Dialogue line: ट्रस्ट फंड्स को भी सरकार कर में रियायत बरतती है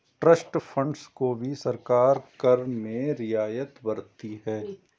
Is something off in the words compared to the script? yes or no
no